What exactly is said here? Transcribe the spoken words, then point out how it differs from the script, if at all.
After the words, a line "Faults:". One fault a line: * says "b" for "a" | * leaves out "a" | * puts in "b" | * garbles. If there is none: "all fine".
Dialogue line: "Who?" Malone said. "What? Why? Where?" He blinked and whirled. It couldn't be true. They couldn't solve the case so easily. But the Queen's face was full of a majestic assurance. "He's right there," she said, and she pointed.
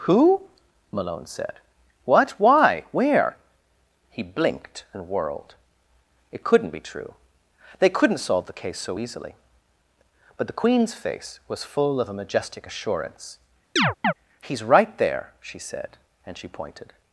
"Who?" Malone said. "What? Why? Where?" He blinked and whirled. It couldn't be true. They couldn't solve the case so easily. But the Queen's face was full of a majestic assurance. "He's right there," she said, and she pointed.
Faults:
all fine